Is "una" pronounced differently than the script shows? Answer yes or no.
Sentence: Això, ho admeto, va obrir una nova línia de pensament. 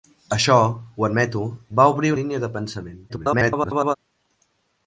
yes